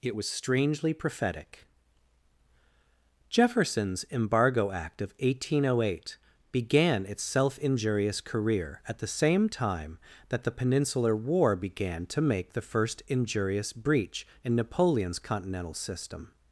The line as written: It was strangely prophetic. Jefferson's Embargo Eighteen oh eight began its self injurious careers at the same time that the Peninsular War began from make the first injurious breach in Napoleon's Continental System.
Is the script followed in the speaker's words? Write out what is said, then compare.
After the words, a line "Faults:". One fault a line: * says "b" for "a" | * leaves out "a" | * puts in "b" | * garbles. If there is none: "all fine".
It was strangely prophetic. Jefferson's Embargo Act of eighteen oh eight began its self injurious career at the same time that the Peninsular War began to make the first injurious breach in Napoleon's Continental System.
Faults:
* puts in "Act of"
* says "career" for "careers"
* says "to" for "from"